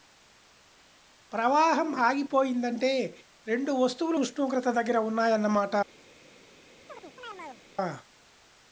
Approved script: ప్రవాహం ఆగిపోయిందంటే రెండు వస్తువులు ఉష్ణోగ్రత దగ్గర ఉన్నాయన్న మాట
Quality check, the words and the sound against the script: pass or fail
fail